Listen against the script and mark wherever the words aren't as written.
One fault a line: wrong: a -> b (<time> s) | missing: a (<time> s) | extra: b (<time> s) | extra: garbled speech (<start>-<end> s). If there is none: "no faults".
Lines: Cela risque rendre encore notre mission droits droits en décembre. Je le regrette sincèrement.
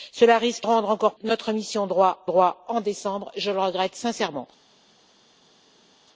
no faults